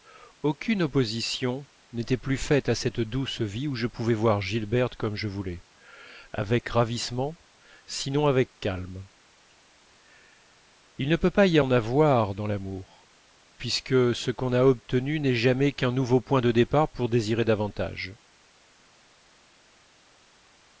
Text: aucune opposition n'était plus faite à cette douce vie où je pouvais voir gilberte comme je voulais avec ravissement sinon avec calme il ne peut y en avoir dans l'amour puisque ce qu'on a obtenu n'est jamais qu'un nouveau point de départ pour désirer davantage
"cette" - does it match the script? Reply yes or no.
yes